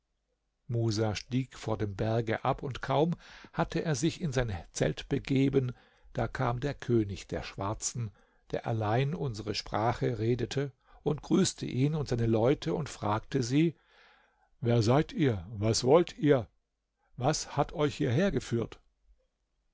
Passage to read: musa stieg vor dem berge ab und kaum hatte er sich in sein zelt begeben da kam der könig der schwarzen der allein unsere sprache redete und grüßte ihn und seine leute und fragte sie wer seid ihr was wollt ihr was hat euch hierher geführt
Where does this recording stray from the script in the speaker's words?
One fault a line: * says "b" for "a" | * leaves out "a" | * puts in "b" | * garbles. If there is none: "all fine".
all fine